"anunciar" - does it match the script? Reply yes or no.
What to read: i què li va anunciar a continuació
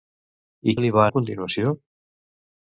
no